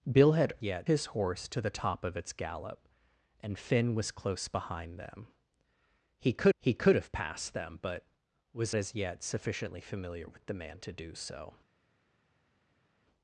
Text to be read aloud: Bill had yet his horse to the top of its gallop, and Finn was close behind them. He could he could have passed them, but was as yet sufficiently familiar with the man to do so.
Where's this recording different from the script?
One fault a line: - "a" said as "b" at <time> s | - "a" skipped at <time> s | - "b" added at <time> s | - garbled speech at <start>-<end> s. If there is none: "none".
none